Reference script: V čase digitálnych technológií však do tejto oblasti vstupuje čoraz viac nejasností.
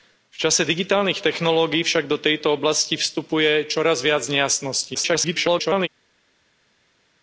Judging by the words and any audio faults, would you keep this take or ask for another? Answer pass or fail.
fail